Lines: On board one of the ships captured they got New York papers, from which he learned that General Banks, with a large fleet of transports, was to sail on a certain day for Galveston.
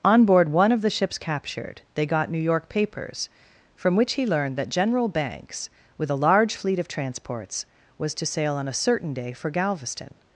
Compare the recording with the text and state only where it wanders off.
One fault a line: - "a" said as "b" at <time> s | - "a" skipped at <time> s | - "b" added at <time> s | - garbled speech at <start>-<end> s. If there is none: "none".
none